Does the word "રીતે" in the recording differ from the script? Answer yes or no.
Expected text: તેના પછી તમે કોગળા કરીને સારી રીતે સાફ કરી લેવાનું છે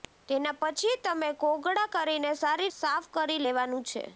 yes